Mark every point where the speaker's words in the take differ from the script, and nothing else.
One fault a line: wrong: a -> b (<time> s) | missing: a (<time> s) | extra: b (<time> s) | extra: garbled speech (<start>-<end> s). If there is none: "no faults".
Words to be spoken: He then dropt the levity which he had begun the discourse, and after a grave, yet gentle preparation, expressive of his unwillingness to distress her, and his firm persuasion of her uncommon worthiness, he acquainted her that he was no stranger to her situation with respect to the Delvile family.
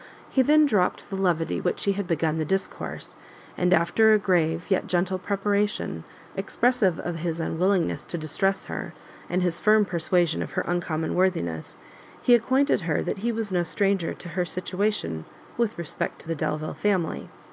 no faults